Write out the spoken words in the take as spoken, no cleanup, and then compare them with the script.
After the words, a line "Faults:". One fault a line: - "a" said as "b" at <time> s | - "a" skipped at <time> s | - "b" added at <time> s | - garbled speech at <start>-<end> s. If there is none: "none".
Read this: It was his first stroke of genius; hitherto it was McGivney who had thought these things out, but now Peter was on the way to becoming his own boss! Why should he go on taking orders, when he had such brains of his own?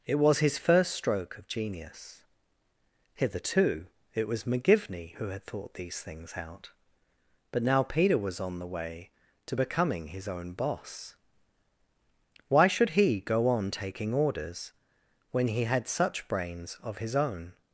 It was his first stroke of genius; hitherto it was McGivney who had thought these things out, but now Peter was on the way to becoming his own boss! Why should he go on taking orders, when he had such brains of his own?
Faults:
none